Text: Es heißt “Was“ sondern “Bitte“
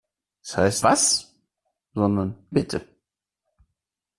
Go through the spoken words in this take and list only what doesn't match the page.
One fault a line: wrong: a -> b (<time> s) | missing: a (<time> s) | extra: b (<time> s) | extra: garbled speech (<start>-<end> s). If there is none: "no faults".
no faults